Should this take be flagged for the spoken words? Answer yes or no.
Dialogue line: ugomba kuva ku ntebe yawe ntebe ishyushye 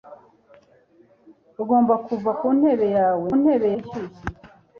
no